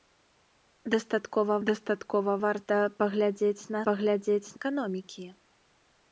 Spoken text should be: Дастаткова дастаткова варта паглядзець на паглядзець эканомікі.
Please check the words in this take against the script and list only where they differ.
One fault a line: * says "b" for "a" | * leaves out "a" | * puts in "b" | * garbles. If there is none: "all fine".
all fine